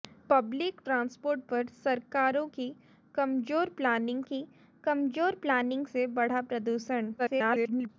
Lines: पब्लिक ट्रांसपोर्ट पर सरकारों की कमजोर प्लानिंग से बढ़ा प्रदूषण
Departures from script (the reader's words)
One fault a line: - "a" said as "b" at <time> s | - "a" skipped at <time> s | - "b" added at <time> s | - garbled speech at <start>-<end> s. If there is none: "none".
- "की कमजोर प्लानिंग" added at 4.3 s
- garbled speech at 7.2-7.9 s